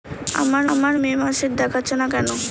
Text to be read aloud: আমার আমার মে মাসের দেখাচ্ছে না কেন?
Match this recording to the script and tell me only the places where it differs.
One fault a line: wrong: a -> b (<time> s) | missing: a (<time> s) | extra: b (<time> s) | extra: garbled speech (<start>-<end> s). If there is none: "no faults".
no faults